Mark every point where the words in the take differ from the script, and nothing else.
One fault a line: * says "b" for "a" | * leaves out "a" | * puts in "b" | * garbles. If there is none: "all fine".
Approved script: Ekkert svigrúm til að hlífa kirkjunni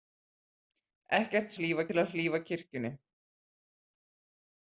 * says "hlífa" for "svigrúm"